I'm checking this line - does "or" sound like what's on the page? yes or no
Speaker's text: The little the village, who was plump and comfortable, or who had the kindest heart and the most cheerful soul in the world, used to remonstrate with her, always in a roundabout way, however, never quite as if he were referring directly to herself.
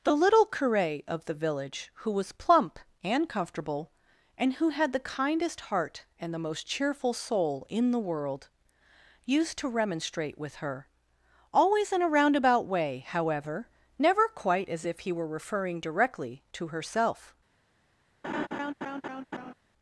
no